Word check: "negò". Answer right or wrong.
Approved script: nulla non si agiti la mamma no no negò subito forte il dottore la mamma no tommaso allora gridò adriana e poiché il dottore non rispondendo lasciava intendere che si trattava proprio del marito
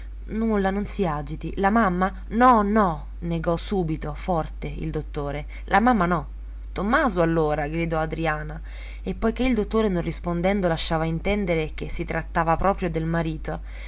right